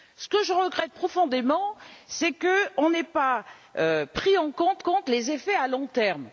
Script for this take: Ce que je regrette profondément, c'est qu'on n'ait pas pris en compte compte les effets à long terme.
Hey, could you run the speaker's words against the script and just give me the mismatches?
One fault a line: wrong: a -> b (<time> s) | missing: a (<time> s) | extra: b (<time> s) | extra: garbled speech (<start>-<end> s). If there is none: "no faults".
no faults